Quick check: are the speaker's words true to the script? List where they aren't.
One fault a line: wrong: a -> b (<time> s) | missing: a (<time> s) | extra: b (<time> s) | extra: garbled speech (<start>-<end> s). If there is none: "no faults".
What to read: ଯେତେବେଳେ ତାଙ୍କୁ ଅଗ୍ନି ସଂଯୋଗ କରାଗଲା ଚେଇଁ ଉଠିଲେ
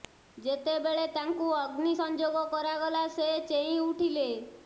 extra: ସେ (3.2 s)